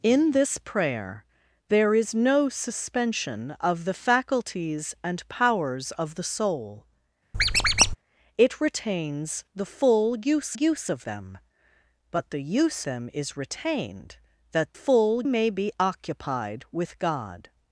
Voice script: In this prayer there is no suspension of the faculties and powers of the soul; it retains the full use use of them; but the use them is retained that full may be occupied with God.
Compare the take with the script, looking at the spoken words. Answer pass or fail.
pass